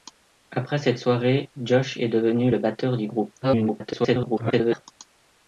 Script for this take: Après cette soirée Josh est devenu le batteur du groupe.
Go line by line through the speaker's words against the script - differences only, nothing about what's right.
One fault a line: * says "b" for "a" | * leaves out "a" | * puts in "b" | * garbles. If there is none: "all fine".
* garbles